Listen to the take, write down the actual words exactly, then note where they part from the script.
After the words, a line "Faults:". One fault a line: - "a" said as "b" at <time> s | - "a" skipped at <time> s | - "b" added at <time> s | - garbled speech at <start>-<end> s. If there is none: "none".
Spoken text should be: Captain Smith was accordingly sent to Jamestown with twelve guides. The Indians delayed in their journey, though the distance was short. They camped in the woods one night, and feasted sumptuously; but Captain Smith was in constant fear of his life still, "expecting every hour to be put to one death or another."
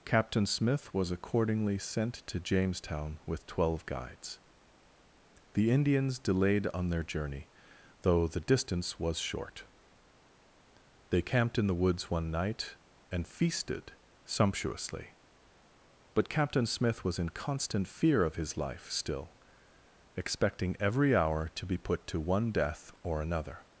Captain Smith was accordingly sent to Jamestown with twelve guides. The Indians delayed on their journey, though the distance was short. They camped in the woods one night, and feasted sumptuously; but Captain Smith was in constant fear of his life still, "expecting every hour to be put to one death or another."
Faults:
- "in" said as "on" at 6.7 s